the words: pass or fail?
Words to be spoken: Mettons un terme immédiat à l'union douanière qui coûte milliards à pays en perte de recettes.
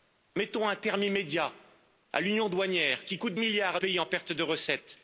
pass